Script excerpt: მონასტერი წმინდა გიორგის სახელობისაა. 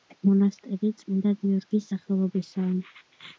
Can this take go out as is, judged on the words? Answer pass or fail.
pass